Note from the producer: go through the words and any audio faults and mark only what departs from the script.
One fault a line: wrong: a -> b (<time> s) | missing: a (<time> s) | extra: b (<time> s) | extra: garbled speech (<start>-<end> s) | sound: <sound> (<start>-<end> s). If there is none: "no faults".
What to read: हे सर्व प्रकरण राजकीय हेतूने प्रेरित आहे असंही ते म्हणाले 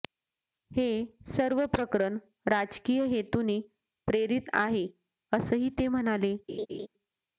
sound: laugh (6.5-6.9 s)